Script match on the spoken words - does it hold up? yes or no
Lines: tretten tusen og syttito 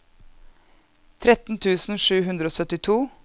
no